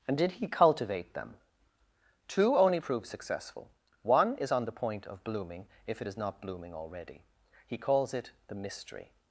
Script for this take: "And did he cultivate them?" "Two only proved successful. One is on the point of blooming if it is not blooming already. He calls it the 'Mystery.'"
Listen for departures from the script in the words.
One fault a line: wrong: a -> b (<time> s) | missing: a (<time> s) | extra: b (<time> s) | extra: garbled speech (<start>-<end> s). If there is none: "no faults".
wrong: proved -> prove (2.8 s)